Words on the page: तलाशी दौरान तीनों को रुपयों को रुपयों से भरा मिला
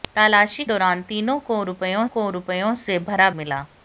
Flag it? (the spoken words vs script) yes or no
no